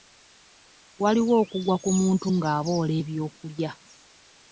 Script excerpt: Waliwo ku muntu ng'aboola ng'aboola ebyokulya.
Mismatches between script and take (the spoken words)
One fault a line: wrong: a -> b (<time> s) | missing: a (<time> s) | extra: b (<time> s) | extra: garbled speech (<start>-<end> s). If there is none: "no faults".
extra: okugwa (1.4 s)
missing: ng'aboola (2.9 s)